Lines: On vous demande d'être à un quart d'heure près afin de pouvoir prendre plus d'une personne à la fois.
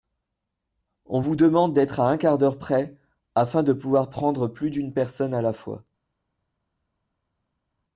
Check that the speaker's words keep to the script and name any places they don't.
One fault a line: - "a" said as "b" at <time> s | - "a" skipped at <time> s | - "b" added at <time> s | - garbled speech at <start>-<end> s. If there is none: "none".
none